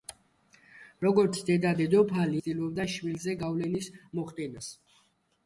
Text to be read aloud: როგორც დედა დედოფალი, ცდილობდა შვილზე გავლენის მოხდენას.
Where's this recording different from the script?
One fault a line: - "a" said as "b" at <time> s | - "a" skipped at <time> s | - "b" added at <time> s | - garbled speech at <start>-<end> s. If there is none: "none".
none